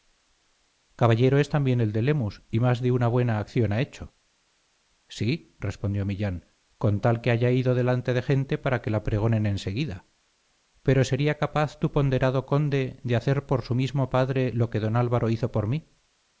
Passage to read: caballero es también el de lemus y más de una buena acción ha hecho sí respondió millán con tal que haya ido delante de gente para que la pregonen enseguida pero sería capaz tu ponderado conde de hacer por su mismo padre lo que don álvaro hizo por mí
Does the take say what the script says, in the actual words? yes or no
yes